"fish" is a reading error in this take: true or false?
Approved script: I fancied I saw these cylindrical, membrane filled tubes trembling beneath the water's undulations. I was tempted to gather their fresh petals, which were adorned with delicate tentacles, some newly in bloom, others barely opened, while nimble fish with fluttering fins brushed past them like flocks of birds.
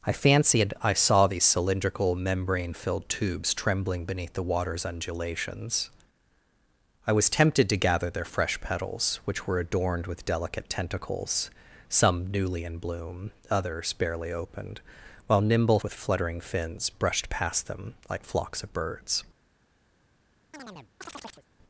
true